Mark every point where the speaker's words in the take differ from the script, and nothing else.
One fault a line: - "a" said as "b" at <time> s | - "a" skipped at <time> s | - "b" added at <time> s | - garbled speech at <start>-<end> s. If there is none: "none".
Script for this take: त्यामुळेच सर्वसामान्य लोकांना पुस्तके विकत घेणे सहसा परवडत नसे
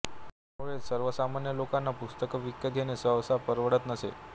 none